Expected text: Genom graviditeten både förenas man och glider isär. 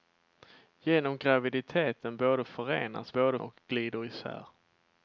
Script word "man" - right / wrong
wrong